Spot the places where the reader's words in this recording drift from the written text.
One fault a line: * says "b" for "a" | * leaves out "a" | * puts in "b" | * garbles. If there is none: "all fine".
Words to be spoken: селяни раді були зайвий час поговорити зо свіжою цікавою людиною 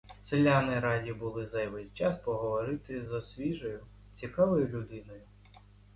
all fine